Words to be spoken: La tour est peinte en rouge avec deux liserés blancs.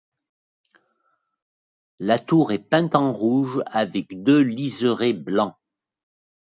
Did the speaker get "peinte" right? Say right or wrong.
right